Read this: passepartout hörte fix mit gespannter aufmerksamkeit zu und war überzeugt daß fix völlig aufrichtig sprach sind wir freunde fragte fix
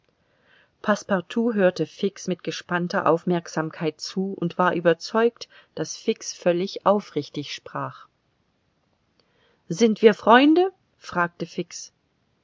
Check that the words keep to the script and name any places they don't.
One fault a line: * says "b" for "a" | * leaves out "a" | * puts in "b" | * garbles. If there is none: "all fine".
all fine